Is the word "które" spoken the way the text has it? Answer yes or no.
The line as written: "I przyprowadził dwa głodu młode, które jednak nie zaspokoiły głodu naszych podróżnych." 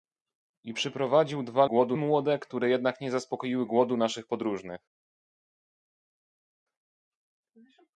yes